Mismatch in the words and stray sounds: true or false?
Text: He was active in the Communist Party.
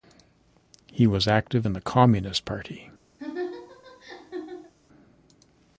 true